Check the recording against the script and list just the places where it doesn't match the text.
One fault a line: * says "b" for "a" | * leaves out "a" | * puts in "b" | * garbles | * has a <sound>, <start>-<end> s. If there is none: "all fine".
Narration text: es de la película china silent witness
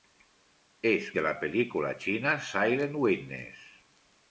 all fine